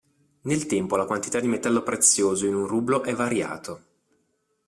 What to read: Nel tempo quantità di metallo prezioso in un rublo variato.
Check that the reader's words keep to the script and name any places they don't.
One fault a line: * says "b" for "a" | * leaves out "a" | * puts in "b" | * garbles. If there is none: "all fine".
* puts in "la"
* puts in "è"